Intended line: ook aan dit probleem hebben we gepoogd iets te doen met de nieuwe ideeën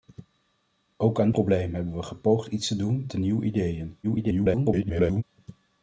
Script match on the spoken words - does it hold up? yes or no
no